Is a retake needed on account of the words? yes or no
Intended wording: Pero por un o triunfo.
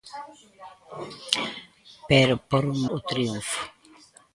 no